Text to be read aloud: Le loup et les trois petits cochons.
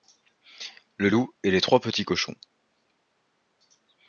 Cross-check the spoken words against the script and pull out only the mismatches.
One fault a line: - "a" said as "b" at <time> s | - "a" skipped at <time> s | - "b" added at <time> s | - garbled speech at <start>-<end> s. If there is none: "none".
none